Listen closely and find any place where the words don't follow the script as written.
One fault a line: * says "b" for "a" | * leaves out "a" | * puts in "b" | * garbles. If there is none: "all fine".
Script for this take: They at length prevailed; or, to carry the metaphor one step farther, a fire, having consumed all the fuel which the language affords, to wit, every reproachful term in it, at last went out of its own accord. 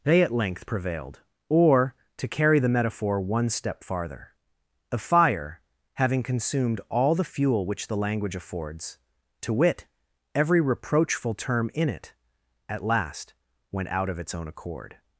all fine